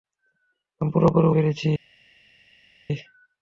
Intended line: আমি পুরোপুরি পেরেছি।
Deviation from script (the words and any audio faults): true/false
false